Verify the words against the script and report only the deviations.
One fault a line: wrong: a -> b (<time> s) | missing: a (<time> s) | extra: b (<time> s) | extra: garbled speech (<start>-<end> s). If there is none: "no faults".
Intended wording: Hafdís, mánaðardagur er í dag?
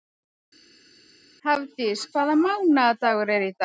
extra: hvaða (2.1 s)